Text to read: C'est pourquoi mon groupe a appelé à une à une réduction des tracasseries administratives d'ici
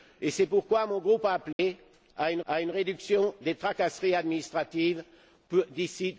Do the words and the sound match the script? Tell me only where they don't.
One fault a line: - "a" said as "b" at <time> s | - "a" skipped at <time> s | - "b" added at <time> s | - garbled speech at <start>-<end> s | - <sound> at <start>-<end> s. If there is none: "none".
- dropout at 1.5-1.6 s